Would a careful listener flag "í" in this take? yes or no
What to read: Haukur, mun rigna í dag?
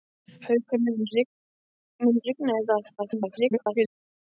no